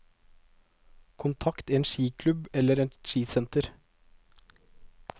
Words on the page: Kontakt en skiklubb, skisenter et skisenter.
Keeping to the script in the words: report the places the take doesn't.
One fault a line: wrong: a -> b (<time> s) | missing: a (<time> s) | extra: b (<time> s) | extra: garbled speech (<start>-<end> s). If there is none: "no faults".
wrong: skisenter -> eller (2.5 s)